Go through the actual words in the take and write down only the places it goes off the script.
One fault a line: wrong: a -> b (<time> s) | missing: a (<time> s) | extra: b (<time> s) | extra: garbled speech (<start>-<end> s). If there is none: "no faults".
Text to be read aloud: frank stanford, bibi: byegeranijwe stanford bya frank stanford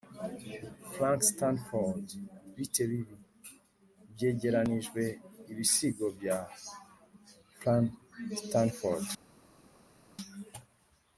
extra: bite (2.5 s)
wrong: stanford -> ibisigo (5.5 s)